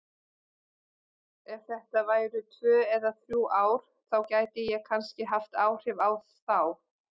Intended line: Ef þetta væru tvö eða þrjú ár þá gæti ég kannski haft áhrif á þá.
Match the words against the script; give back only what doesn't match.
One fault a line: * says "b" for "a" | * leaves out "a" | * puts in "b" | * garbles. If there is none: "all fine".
all fine